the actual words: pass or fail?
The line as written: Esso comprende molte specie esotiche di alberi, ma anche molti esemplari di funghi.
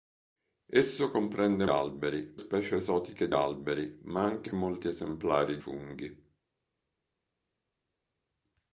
fail